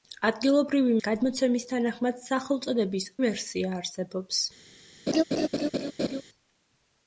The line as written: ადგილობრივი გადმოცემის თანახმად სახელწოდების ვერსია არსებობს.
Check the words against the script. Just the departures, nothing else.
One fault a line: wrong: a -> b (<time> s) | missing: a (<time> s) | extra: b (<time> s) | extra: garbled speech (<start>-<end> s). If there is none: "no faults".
no faults